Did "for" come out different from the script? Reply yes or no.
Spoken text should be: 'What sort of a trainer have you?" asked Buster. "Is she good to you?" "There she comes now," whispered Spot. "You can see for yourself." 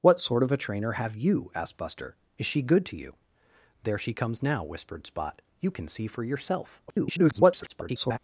no